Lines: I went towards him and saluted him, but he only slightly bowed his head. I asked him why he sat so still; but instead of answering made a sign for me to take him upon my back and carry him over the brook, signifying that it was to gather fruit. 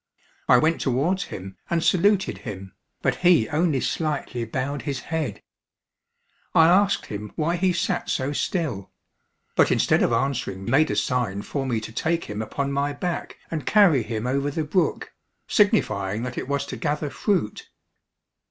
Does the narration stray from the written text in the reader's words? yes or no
no